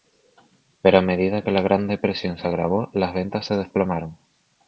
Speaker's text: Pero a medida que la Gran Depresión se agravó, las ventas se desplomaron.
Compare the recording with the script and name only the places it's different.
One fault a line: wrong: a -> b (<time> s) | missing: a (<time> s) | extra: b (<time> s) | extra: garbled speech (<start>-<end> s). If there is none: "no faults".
no faults